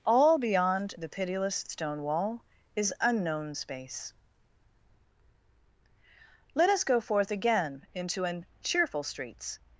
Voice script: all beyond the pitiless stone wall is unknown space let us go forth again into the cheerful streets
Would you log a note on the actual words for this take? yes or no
yes